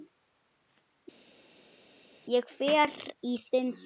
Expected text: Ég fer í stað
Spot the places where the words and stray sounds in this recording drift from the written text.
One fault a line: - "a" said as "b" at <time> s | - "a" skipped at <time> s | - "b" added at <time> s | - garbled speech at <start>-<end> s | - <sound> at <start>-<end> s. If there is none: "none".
- "þinn" added at 3.5 s